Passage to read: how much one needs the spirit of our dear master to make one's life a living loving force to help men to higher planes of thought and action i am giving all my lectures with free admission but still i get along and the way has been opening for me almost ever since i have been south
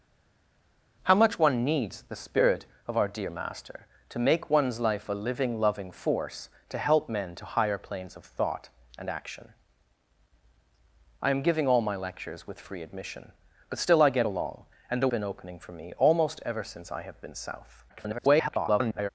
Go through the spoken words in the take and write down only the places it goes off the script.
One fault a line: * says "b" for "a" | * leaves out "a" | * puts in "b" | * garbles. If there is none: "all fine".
* leaves out "way has"
* garbles